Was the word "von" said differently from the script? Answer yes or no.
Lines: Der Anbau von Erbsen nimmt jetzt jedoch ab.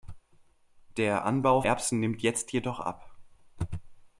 yes